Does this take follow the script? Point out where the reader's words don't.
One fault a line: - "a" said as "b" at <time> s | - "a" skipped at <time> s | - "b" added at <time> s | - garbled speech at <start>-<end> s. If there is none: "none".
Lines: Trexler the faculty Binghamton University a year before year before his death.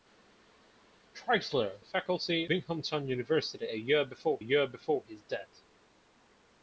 none